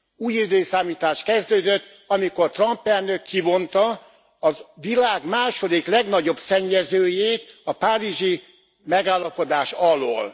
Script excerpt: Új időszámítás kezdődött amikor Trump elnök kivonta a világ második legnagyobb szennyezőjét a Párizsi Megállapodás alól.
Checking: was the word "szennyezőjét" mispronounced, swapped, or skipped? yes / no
no